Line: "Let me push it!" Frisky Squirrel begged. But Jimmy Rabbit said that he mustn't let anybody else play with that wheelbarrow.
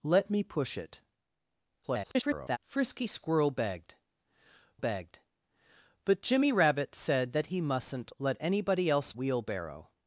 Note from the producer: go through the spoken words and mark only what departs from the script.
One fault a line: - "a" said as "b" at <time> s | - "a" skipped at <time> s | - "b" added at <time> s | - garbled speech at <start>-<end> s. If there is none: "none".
- garbled speech at 1.8-2.6 s
- "begged" added at 4.8 s
- "play with that" skipped at 9.1 s